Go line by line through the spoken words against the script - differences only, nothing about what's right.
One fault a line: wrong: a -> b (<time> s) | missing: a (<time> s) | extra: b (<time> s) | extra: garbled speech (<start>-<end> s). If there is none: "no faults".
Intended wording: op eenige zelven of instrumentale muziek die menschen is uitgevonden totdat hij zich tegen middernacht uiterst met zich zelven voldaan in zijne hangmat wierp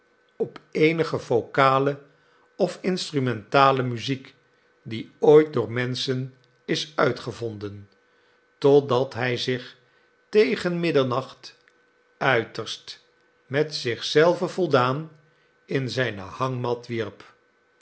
wrong: zelven -> vocale (1.2 s)
extra: ooit door (5.2 s)